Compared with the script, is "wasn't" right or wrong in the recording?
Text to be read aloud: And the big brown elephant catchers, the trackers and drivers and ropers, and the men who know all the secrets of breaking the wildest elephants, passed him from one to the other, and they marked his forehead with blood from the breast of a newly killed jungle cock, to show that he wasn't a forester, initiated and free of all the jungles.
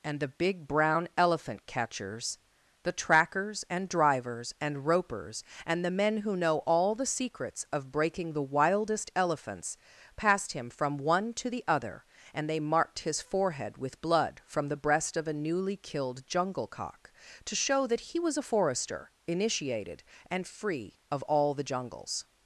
wrong